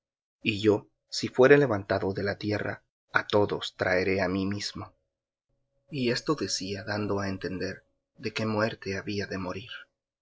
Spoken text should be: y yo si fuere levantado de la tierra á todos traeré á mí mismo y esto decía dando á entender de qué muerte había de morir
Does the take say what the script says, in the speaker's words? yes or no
yes